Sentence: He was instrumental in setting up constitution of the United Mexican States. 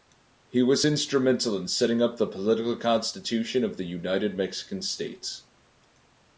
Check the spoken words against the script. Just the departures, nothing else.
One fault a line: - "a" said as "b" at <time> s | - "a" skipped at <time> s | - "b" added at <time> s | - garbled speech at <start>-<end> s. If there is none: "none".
- "the political" added at 2.2 s